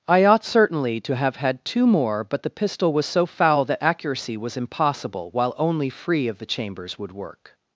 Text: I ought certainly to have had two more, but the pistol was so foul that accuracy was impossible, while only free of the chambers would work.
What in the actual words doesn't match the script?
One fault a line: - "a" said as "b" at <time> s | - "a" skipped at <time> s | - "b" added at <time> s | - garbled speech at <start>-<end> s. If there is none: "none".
none